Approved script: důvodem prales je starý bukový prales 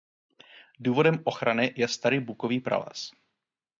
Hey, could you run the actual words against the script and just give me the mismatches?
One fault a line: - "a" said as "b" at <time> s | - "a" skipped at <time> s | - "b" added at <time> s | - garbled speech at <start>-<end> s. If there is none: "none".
- "prales" said as "ochrany" at 1.2 s